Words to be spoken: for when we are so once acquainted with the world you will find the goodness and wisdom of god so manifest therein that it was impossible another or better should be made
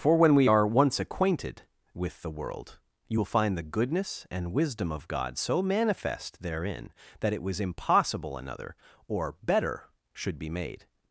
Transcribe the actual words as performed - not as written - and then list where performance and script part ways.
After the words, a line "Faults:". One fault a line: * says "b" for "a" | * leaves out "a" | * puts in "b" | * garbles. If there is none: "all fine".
for when we are once acquainted with the world you will find the goodness and wisdom of god so manifest therein that it was impossible another or better should be made
Faults:
* leaves out "so"